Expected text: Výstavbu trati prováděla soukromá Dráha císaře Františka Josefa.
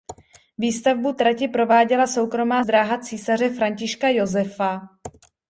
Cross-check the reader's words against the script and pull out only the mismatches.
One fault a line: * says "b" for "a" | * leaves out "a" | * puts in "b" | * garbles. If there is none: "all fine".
all fine